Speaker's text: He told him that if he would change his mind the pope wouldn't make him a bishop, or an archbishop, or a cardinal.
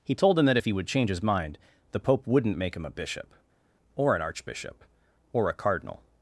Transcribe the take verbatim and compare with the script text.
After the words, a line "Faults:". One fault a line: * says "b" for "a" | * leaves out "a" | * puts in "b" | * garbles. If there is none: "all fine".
He told him that if he would change his mind the pope wouldn't make him a bishop, or an archbishop, or a cardinal.
Faults:
all fine